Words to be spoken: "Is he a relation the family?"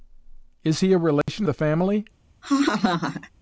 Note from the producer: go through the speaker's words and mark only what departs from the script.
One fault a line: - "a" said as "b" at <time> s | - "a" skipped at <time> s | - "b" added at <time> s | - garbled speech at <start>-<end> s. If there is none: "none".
none